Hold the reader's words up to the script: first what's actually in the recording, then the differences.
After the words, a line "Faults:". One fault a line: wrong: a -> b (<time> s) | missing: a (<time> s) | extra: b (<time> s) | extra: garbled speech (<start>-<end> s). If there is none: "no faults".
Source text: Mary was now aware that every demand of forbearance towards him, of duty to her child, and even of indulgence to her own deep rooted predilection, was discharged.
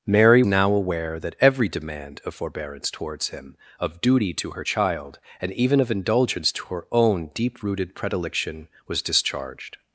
Mary now aware that every demand of forbearance towards him, of duty to her child, and even of indulgence to her own deep rooted predilection, was discharged.
Faults:
missing: was (0.4 s)